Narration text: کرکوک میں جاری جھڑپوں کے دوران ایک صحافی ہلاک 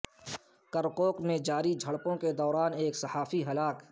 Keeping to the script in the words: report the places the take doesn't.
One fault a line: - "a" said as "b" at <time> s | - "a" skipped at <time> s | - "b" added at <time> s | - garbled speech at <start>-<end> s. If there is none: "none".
none